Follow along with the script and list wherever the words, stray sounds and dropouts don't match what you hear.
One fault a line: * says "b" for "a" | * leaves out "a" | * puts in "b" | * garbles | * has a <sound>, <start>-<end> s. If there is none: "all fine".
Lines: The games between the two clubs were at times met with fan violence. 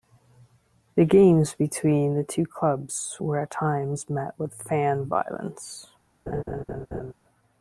* has a laugh, 6.3-7.1 s